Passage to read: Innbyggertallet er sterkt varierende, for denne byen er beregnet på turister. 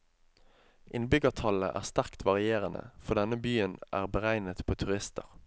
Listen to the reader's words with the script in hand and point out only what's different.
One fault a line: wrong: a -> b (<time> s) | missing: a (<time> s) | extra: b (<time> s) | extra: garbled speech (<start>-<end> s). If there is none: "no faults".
no faults